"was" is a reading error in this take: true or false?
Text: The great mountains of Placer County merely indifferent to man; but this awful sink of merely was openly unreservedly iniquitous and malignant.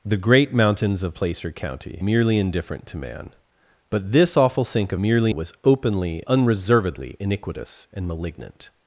false